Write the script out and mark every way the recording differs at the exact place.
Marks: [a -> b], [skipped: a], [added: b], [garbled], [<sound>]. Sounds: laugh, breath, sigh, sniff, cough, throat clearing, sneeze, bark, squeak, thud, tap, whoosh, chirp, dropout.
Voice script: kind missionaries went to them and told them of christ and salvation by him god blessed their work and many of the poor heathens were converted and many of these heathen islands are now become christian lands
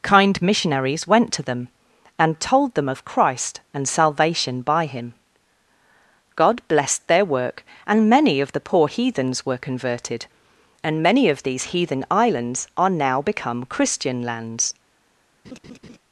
kind missionaries went to them and told them of christ and salvation by him god blessed their work and many of the poor heathens were converted and many of these heathen islands are now become christian lands [laugh]